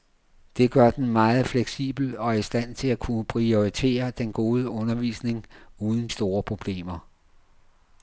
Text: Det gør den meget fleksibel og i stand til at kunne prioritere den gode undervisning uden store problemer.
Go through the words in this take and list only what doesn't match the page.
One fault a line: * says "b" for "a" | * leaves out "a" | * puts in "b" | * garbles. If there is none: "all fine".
all fine